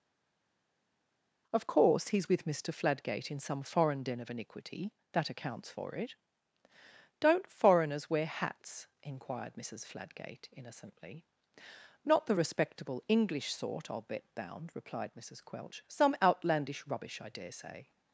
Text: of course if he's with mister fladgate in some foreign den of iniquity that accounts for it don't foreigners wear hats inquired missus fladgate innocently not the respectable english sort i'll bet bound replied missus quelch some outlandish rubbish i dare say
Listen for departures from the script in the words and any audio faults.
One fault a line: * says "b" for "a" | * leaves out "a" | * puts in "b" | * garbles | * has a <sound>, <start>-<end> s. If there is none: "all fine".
* leaves out "if"